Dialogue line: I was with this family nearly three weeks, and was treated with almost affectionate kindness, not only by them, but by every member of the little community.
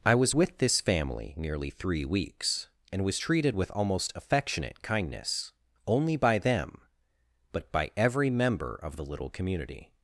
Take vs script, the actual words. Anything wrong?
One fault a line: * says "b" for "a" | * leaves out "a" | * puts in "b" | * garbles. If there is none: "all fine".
* leaves out "not"